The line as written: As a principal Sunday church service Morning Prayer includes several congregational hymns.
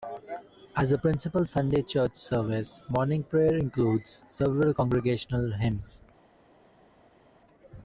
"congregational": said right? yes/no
yes